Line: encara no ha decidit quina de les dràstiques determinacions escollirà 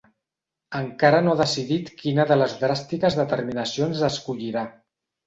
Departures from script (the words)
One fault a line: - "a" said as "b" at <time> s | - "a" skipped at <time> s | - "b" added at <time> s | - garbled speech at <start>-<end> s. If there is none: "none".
none